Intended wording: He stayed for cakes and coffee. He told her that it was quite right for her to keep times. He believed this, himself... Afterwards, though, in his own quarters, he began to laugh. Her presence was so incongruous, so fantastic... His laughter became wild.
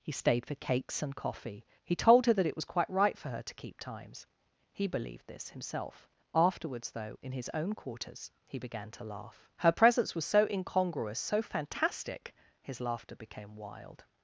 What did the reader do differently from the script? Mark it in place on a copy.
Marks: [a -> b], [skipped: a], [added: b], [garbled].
He stayed for cakes and coffee. He told her that it was quite right for her to keep times. He believed this, himself... Afterwards, though, in his own quarters, he began to laugh. Her presence was so incongruous, so fantastic... His laughter became wild.